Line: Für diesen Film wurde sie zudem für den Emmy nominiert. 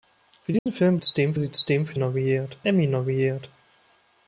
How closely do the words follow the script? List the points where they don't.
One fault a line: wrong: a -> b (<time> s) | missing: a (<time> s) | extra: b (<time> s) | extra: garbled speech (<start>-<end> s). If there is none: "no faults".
wrong: wurde -> zudem (1.0 s)
wrong: den -> nominiert (1.9 s)